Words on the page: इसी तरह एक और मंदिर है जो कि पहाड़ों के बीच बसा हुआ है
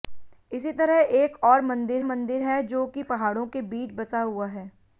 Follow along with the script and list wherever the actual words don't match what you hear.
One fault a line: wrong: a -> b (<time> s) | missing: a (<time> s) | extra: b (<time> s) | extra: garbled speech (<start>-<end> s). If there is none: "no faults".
extra: मंदिर (2.0 s)